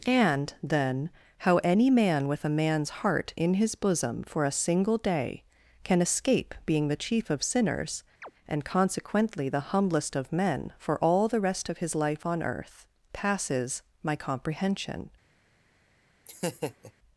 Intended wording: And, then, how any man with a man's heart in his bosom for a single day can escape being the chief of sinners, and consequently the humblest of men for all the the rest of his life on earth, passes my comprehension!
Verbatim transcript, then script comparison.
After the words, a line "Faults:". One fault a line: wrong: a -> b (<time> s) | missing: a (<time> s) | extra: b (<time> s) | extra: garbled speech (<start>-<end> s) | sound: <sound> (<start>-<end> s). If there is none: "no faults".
And, then, how any man with a man's heart in his bosom for a single day can escape being the chief of sinners, and consequently the humblest of men for all the rest of his life on earth, passes my comprehension!
Faults:
sound: chirp (8.2-8.3 s)
missing: the (11.4 s)
sound: laugh (16.3-16.9 s)